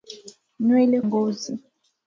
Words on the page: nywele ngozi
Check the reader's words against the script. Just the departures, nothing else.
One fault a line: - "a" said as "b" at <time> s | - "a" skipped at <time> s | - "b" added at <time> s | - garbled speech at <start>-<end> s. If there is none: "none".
none